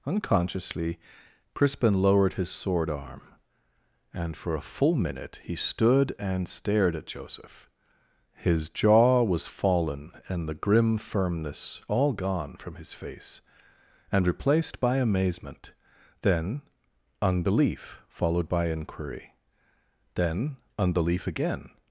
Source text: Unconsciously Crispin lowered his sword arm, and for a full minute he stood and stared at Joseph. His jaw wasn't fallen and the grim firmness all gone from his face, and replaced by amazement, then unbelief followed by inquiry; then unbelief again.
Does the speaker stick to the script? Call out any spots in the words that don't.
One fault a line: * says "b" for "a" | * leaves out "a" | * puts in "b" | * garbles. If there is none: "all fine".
* says "was" for "wasn't"